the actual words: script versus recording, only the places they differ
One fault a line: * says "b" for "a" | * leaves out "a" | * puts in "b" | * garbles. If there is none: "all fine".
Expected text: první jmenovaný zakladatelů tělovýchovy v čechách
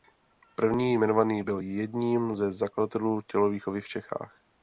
* puts in "byl jedním ze"